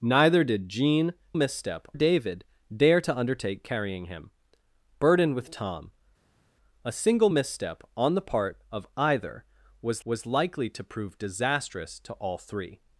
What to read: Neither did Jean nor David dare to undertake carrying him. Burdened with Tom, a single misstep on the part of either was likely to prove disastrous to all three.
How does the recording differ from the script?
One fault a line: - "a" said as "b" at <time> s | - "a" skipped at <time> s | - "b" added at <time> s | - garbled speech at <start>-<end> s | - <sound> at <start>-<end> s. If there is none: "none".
- "nor" said as "misstep" at 1.3 s
- "was" added at 10.0 s